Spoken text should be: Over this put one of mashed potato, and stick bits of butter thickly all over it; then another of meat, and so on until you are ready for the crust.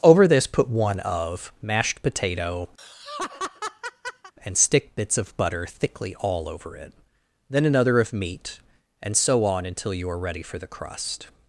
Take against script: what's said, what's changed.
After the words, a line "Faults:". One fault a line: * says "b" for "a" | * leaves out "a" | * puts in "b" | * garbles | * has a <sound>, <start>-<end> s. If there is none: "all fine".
Over this put one of mashed potato, and stick bits of butter thickly all over it; then another of meat, and so on until you are ready for the crust.
Faults:
* has a laugh, 2.8-4.3 s